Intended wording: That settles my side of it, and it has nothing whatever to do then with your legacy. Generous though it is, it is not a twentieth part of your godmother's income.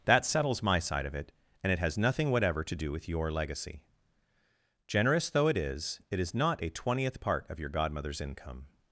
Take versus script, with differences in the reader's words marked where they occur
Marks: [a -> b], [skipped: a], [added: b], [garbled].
That settles my side of it, and it has nothing whatever to do [skipped: then] with your legacy. Generous though it is, it is not a twentieth part of your godmother's income.